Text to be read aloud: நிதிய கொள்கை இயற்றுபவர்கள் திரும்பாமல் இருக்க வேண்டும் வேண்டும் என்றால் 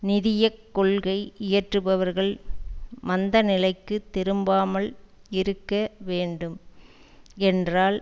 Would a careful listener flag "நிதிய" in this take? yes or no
no